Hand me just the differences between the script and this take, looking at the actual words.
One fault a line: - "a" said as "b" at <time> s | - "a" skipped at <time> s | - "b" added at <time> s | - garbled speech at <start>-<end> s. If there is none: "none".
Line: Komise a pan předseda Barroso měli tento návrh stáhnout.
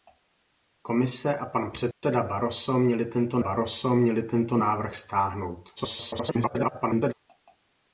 - "Barroso měli tento" added at 3.4 s
- garbled speech at 5.8-7.1 s